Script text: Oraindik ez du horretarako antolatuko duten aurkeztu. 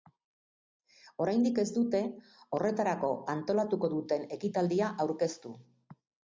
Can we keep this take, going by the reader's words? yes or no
no